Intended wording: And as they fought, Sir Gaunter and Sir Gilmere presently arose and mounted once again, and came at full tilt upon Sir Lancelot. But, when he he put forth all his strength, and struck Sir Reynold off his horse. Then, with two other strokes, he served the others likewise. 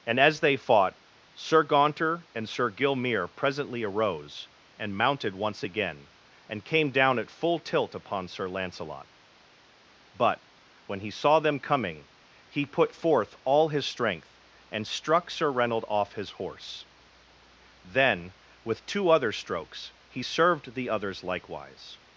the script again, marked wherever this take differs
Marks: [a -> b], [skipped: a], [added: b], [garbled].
And as they fought, Sir Gaunter and Sir Gilmere presently arose and mounted once again, and came [added: down] at full tilt upon Sir Lancelot. But, when he [added: saw them coming] he put forth all his strength, and struck Sir Reynold off his horse. Then, with two other strokes, he served the others likewise.